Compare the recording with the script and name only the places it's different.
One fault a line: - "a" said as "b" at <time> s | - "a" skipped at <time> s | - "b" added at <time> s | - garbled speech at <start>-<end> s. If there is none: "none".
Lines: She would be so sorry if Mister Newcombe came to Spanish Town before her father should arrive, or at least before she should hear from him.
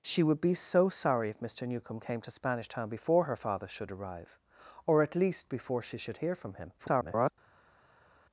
- garbled speech at 6.8-7.3 s